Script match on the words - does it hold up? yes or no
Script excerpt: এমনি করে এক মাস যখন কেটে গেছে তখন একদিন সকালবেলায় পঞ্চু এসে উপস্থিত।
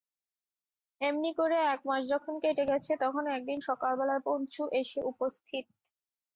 yes